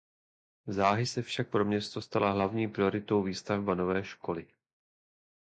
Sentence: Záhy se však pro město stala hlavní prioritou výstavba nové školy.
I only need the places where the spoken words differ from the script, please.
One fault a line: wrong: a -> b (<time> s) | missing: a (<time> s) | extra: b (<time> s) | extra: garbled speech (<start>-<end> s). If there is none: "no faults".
no faults